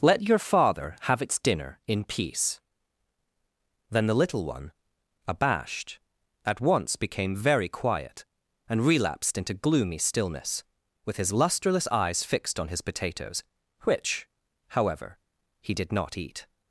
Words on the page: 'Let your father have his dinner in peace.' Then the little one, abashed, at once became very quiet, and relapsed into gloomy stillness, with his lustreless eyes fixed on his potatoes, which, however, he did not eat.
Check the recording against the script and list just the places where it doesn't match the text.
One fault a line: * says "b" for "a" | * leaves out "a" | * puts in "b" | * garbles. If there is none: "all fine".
* says "its" for "his"